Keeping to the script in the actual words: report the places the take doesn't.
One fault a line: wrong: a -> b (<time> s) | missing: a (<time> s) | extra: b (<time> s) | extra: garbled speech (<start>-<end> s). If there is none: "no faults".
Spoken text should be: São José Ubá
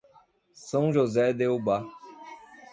extra: de (1.3 s)